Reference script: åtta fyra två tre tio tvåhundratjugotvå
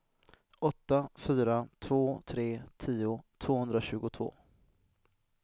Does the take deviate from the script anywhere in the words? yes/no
no